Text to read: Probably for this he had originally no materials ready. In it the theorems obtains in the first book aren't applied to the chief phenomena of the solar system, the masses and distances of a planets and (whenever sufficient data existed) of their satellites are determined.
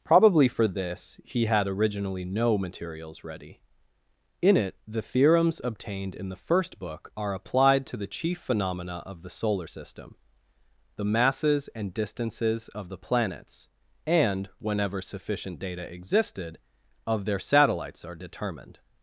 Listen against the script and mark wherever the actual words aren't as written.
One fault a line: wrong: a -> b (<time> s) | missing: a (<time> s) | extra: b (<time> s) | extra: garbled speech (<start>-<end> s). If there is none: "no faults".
wrong: obtains -> obtained (5.6 s)
wrong: aren't -> are (7.2 s)
wrong: a -> the (12.9 s)